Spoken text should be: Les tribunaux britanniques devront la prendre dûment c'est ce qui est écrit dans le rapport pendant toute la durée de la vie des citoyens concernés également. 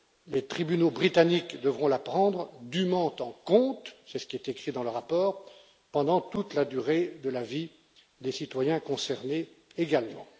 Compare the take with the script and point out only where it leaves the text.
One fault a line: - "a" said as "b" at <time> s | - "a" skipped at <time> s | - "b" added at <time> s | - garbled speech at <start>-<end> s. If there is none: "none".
- "en compte" added at 3.2 s